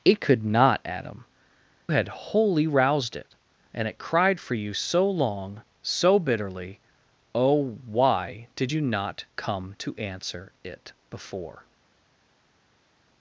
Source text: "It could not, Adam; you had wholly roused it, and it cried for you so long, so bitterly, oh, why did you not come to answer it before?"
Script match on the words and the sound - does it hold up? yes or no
no